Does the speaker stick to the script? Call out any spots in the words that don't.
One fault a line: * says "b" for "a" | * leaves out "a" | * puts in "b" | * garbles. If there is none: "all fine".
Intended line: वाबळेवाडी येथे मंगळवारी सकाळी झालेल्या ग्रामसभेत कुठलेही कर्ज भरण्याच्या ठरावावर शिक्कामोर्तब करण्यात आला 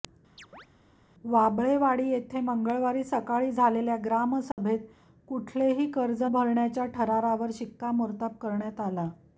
all fine